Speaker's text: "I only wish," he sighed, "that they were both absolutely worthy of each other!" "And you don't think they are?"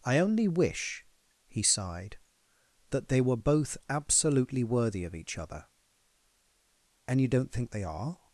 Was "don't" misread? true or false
false